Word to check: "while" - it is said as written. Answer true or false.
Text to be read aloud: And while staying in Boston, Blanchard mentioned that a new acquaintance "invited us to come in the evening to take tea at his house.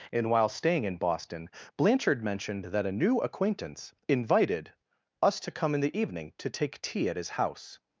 true